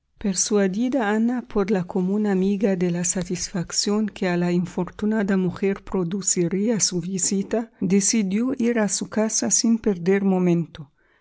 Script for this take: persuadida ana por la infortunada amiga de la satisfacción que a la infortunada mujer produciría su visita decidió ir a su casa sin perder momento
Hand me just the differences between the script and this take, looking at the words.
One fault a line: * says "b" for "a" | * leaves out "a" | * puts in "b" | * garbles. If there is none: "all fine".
* says "común" for "infortunada"